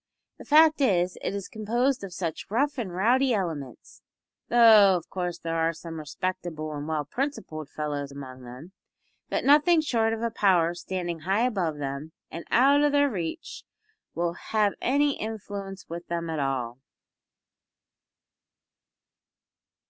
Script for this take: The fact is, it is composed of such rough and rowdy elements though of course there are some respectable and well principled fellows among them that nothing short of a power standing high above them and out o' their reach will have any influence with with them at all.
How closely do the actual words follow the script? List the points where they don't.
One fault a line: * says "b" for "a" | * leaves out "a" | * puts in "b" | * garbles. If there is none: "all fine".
* leaves out "with"